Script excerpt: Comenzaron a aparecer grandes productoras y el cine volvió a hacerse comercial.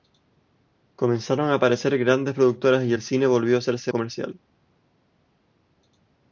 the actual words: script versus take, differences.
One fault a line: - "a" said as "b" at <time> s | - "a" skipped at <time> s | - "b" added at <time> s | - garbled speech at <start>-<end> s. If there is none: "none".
none